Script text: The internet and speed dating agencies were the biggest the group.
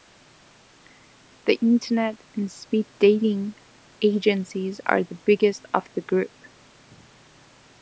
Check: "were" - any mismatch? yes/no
yes